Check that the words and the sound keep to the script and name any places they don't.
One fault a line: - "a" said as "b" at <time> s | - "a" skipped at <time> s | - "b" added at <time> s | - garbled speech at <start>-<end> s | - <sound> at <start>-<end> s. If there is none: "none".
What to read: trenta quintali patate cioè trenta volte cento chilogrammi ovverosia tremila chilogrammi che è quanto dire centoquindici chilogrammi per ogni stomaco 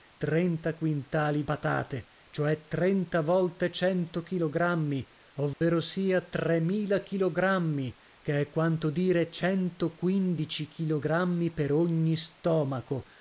- dropout at 5.5-5.6 s